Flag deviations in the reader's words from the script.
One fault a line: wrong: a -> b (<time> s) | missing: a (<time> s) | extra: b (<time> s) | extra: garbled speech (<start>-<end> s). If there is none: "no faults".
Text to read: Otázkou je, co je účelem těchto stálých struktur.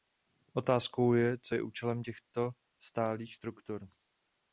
no faults